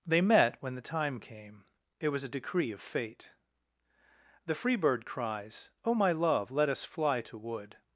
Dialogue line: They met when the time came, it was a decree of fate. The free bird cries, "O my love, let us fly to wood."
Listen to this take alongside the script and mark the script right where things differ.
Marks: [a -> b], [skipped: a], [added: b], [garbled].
They met when the time came, it was a decree of fate. The free bird cries, "O my love, let us fly to wood."